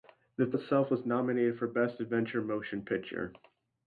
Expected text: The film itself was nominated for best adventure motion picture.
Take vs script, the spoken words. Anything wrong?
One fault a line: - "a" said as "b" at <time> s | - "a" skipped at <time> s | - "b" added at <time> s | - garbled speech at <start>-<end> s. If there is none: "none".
- "film" skipped at 0.5 s